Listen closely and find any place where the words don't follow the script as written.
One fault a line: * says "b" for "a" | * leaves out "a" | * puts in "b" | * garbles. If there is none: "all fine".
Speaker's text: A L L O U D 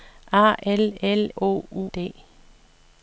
all fine